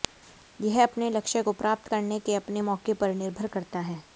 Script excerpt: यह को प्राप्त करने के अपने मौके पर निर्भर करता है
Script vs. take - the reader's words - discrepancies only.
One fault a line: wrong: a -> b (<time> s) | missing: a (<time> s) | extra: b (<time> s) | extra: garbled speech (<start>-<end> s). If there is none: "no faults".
extra: अपने लक्ष्य (0.8 s)